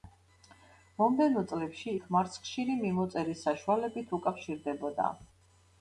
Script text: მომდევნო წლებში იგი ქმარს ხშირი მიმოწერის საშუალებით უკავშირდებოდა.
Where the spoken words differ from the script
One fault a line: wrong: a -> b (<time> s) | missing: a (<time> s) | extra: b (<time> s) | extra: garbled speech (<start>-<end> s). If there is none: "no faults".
missing: იგი (1.9 s)